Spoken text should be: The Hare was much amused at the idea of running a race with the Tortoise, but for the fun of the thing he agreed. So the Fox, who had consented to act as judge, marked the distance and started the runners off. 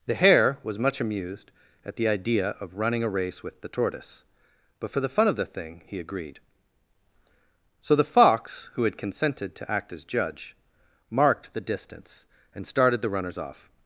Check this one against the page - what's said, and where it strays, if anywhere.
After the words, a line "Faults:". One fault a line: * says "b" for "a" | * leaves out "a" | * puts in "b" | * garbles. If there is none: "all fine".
The Hare was much amused at the idea of running a race with the Tortoise, but for the fun of the thing he agreed. So the Fox, who had consented to act as judge, marked the distance and started the runners off.
Faults:
all fine